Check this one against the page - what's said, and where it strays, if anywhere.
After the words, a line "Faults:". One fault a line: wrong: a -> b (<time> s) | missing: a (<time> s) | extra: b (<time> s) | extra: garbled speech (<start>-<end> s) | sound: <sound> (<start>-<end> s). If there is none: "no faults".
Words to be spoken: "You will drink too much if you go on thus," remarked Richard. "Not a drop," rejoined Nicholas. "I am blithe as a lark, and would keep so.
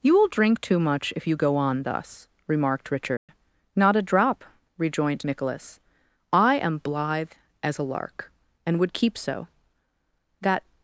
"You will drink too much if you go on thus," remarked Richard. "Not a drop," rejoined Nicholas. "I am blithe as a lark, and would keep so. That
Faults:
sound: dropout (3.2-3.3 s)
extra: That (10.4 s)